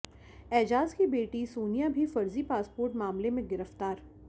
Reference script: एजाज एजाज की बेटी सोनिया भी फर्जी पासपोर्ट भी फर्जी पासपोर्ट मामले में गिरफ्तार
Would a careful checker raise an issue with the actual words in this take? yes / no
yes